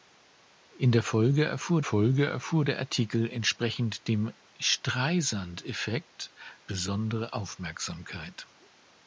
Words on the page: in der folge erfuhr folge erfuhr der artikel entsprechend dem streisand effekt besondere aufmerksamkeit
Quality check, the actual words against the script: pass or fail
pass